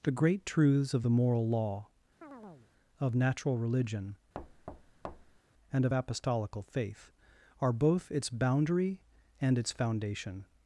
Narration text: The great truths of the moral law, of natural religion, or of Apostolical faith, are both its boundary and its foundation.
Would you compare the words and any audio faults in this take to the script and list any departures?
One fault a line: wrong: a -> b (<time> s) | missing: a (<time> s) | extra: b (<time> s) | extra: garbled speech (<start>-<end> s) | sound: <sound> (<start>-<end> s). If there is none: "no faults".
sound: chirp (2.2-2.7 s)
sound: thud (4.3-5.4 s)
wrong: or -> and (5.7 s)